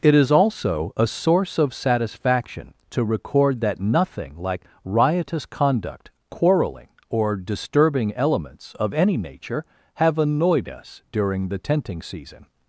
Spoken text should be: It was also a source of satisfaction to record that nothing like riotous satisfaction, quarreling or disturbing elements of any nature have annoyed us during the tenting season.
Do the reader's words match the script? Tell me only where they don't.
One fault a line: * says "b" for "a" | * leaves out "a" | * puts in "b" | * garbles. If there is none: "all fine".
* says "is" for "was"
* says "conduct" for "satisfaction"